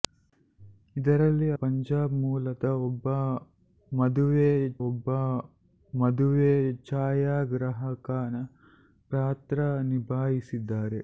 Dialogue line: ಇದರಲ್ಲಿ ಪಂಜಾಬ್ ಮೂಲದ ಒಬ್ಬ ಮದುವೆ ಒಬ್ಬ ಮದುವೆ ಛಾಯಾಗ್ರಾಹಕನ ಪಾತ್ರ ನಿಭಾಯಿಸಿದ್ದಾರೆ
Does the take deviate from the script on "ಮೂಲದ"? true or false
false